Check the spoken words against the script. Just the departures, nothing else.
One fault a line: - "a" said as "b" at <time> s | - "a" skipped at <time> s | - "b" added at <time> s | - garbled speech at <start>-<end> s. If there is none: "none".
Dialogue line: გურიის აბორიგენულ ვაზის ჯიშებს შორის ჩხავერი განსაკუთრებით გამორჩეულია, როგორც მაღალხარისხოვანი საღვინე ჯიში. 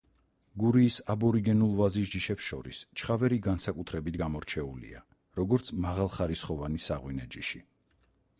none